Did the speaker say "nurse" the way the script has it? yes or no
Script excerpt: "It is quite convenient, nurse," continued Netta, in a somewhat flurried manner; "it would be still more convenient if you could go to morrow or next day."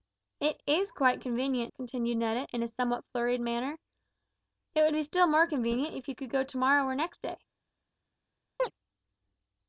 no